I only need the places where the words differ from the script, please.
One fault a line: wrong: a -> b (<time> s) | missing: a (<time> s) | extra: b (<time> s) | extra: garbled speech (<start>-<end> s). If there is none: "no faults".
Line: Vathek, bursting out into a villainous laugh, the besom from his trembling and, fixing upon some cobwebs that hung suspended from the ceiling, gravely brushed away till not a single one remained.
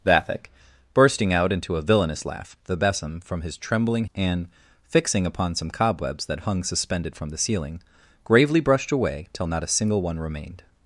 no faults